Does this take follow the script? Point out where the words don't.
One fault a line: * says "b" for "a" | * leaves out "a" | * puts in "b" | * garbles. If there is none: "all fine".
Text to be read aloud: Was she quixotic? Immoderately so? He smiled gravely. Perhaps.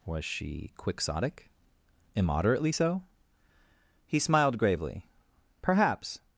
all fine